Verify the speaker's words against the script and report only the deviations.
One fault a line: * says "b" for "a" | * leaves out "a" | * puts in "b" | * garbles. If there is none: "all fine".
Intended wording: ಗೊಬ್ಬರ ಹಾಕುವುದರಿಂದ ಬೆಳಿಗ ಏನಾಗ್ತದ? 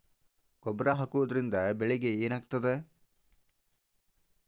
all fine